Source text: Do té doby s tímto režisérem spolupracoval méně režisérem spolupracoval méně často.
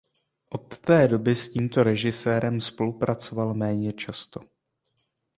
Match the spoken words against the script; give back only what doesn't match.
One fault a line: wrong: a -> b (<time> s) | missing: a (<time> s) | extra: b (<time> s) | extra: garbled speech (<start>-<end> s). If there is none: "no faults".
wrong: Do -> Od (0.5 s)
missing: režisérem spolupracoval méně (3.9 s)